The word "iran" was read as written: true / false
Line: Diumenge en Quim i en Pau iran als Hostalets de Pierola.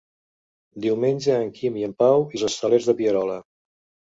false